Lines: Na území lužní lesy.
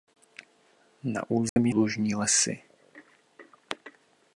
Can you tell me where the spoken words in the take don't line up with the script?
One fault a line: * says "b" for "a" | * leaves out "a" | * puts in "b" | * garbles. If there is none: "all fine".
all fine